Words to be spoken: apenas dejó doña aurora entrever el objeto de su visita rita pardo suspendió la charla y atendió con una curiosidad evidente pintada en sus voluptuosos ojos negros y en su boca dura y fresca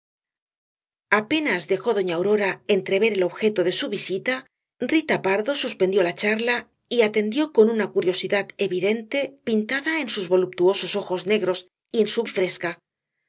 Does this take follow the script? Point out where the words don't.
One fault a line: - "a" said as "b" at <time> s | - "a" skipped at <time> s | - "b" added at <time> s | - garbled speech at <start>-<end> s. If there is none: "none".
- "boca dura" skipped at 12.2 s